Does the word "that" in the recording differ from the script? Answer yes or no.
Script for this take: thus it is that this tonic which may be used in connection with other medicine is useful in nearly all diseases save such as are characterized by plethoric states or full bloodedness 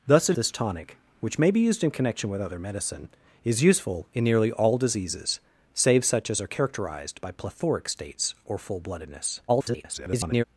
yes